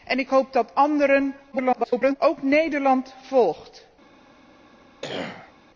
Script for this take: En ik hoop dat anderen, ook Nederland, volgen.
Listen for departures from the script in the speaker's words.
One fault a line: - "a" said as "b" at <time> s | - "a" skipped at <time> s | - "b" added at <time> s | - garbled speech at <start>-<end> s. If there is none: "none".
- garbled speech at 1.5-2.2 s